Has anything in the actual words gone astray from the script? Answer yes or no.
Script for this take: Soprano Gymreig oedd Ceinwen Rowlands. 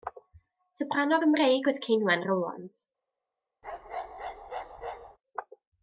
no